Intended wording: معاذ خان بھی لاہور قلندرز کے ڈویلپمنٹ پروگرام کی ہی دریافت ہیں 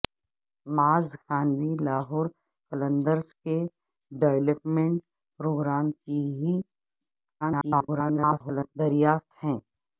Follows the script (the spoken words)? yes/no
no